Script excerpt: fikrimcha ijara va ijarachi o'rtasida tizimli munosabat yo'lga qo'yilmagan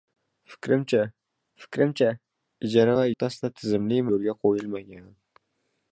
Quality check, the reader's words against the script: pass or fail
fail